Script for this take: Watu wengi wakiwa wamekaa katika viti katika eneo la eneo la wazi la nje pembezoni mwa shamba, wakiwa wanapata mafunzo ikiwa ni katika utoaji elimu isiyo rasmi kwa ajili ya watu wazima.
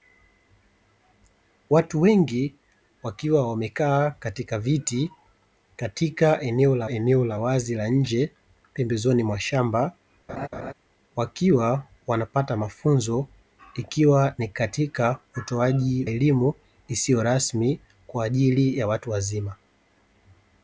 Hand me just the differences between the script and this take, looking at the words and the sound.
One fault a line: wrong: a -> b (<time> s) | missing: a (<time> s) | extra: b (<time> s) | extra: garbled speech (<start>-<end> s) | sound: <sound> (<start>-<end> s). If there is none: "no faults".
sound: laugh (10.3-10.7 s)